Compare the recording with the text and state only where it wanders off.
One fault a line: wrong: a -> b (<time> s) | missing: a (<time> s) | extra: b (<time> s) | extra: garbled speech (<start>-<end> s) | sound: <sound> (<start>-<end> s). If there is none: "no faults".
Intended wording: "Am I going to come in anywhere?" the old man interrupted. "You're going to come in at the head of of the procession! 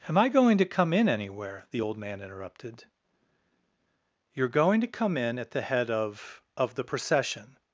no faults